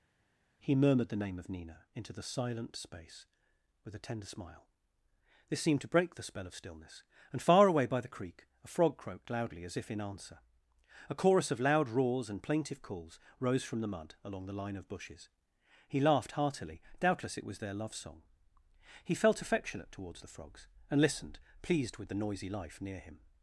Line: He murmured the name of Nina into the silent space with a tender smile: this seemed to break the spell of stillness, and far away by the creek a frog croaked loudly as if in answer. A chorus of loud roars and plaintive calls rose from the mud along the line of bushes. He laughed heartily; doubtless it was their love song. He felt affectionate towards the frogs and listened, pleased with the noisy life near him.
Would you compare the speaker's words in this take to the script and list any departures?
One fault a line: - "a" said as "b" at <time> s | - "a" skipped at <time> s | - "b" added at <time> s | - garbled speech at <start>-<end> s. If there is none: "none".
none